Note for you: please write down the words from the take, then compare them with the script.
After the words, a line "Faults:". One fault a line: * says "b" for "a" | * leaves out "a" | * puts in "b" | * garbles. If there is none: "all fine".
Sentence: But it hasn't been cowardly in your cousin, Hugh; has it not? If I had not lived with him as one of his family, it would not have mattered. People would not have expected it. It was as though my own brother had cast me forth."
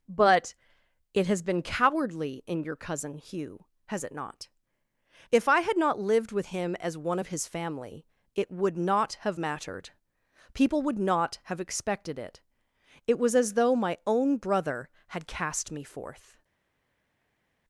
But it has been cowardly in your cousin, Hugh; has it not? If I had not lived with him as one of his family, it would not have mattered. People would not have expected it. It was as though my own brother had cast me forth."
Faults:
* says "has" for "hasn't"